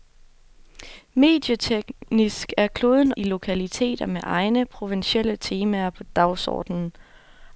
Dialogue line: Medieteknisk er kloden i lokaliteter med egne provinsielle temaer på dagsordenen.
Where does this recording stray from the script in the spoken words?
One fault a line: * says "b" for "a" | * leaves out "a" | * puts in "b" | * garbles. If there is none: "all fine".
all fine